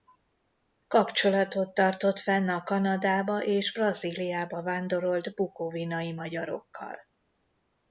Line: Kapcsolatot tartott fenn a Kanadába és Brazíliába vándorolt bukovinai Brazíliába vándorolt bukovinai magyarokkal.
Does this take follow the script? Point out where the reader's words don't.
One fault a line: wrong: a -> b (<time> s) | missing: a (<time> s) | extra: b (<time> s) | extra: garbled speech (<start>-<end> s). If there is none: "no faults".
missing: Brazíliába vándorolt bukovinai (6.1 s)